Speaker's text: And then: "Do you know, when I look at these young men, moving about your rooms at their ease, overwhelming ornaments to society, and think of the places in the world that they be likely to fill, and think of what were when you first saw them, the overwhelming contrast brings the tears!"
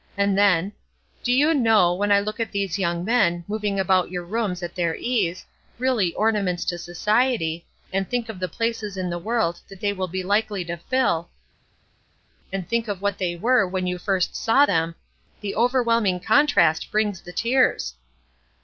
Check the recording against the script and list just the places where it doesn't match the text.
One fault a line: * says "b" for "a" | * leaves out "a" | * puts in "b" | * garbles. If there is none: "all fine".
* says "really" for "overwhelming"
* puts in "will"
* puts in "they"